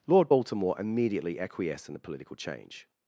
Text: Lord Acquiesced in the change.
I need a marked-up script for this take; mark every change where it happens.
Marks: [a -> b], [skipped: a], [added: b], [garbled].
Lord [added: Baltimore immediately] Acquiesced in the [added: political] change.